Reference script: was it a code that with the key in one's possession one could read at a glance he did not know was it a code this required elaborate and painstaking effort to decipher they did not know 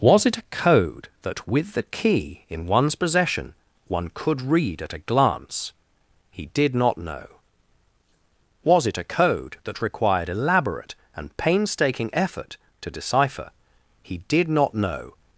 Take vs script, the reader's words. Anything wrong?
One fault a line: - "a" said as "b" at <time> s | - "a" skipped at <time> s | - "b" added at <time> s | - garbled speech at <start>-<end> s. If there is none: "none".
- "this" said as "that" at 9.6 s
- "they" said as "he" at 14.0 s